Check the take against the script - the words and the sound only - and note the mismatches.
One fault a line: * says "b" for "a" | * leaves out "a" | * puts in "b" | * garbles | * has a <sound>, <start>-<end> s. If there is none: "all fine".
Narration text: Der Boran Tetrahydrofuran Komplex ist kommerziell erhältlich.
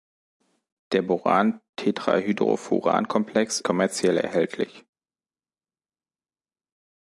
* leaves out "ist"